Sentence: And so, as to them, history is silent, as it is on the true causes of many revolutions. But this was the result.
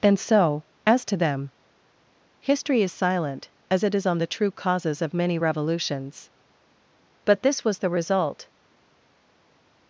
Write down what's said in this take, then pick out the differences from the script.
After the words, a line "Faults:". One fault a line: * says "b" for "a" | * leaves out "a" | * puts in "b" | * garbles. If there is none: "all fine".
And so, as to them, history is silent, as it is on the true causes of many revolutions. But this was the result.
Faults:
all fine